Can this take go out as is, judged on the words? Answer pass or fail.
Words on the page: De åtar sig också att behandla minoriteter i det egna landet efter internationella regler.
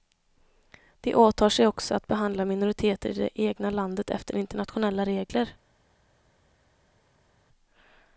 pass